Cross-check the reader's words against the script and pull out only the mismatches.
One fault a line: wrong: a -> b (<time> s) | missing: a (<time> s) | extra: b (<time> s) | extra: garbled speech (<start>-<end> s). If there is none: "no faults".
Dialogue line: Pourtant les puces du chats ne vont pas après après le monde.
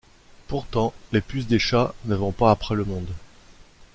wrong: du -> des (1.4 s)
missing: après (2.7 s)